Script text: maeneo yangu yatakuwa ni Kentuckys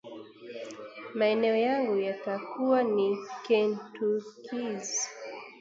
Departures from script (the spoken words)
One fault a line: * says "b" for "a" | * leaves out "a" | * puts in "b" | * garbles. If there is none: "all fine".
all fine